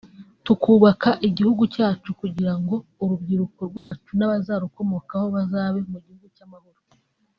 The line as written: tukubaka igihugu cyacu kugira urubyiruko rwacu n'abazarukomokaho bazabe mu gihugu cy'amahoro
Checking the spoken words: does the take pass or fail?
fail